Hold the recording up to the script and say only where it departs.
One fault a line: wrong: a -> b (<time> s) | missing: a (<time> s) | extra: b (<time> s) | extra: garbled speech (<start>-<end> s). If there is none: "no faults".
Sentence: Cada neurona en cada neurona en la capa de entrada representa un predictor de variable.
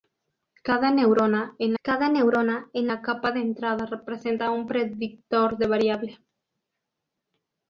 no faults